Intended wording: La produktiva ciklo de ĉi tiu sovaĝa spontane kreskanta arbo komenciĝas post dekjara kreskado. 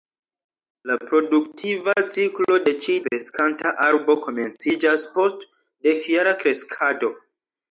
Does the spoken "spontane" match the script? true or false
false